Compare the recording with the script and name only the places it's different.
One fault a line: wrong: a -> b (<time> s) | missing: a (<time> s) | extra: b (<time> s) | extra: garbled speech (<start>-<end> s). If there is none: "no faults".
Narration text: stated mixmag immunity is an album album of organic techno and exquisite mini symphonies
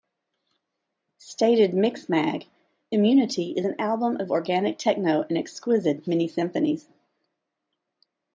missing: album (4.2 s)